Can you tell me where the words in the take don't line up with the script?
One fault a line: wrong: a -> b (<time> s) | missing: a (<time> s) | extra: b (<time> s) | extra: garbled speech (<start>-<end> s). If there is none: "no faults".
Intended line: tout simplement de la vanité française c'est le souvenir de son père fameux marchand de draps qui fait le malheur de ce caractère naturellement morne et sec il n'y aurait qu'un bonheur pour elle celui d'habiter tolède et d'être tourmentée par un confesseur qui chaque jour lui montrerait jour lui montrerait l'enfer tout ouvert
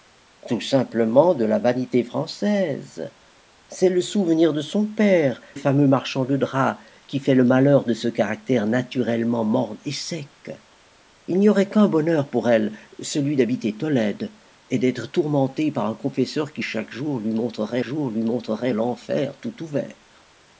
no faults